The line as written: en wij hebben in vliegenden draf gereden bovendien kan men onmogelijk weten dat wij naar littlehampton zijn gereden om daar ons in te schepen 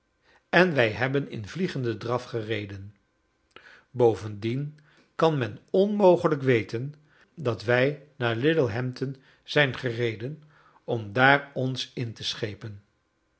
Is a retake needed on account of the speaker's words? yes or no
no